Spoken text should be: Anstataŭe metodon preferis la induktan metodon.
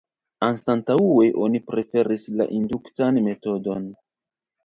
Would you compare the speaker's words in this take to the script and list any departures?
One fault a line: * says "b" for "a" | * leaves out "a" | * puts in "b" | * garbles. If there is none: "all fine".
* says "oni" for "metodon"